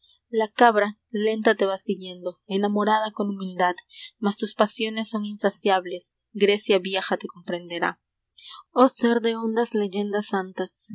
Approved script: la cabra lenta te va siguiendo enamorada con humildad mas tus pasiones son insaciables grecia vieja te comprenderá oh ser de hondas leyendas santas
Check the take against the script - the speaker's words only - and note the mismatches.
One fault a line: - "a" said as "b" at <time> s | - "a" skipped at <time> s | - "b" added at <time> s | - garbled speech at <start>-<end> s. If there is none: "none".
none